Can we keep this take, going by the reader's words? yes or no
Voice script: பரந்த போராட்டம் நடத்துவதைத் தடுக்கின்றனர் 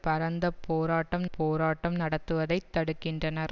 no